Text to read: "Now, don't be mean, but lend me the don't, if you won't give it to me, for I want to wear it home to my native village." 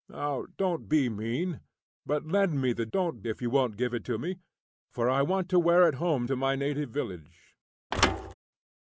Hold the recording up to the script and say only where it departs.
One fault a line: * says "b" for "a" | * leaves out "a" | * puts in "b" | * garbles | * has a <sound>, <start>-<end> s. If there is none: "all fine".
* has a thud, 7.9-8.3 s